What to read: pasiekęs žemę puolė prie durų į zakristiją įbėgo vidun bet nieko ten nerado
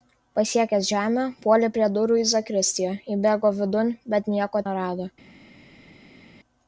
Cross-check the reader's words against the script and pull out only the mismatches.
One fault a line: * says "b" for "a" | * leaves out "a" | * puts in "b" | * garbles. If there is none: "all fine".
* leaves out "ten"